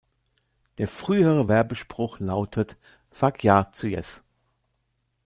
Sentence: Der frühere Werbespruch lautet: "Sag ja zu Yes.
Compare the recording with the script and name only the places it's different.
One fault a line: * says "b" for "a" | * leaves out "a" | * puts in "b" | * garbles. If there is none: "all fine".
all fine